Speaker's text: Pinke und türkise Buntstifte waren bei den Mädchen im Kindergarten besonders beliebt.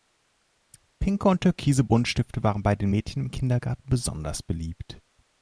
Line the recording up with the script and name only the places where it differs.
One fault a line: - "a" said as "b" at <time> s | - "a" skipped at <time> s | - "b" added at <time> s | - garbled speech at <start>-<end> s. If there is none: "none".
none